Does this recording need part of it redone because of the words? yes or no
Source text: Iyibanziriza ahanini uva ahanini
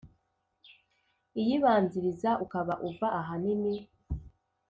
yes